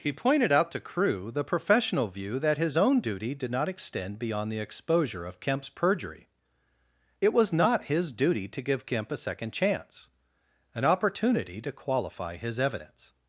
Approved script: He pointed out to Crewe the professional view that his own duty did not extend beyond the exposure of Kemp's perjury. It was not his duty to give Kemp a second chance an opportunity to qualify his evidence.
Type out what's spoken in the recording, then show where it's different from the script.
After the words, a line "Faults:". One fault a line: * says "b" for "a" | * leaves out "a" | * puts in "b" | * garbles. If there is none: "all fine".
He pointed out to Crewe the professional view that his own duty did not extend beyond the exposure of Kemp's perjury. It was not his duty to give Kemp a second chance an opportunity to qualify his evidence.
Faults:
all fine